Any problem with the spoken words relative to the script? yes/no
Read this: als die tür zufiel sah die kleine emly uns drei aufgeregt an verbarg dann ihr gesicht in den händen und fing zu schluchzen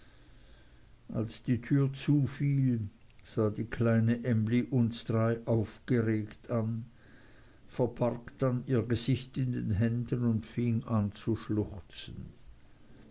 yes